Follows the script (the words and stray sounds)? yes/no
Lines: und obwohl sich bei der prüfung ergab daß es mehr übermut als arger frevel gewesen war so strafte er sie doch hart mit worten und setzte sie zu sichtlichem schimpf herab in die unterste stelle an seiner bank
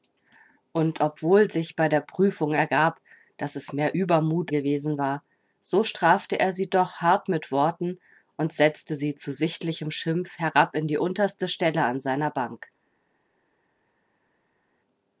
no